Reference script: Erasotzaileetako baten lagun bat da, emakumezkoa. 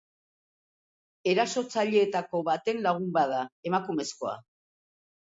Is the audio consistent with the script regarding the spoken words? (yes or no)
yes